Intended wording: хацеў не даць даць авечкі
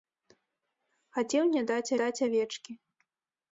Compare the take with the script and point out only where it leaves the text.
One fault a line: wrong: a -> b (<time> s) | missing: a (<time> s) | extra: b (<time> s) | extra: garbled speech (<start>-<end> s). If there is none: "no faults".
no faults